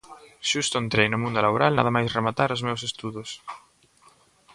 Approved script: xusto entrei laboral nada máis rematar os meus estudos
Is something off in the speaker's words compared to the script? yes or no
yes